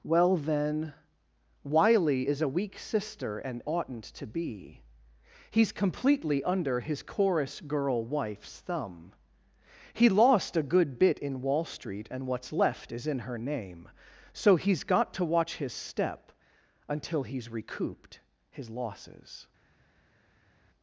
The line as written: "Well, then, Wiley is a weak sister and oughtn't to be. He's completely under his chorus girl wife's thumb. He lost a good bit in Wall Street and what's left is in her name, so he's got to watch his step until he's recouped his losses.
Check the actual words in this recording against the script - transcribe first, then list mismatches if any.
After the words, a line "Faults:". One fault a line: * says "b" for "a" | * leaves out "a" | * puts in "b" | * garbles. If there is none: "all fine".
"Well, then, Wiley is a weak sister and oughtn't to be. He's completely under his chorus girl wife's thumb. He lost a good bit in Wall Street and what's left is in her name, so he's got to watch his step until he's recouped his losses.
Faults:
all fine